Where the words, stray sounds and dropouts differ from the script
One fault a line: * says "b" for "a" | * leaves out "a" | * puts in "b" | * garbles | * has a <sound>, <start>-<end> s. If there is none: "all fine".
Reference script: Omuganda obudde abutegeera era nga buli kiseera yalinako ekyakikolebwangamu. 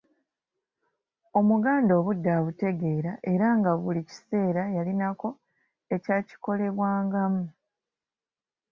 all fine